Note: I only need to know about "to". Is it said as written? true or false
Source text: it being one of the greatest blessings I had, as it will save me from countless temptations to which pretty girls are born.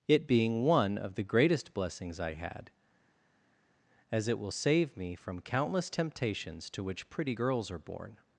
true